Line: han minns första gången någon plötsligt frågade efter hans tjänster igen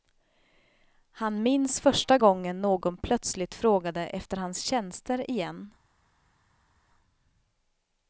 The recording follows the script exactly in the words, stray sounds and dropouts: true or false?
true